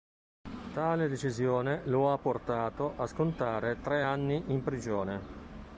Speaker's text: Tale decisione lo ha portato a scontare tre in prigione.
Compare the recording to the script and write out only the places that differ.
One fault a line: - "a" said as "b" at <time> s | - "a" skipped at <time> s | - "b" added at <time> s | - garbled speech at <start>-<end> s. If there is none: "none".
- "anni" added at 4.0 s